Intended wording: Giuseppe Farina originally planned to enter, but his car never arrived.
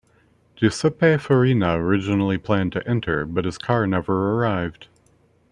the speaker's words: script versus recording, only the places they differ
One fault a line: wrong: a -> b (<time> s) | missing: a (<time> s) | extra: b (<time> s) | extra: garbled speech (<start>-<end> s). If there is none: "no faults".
no faults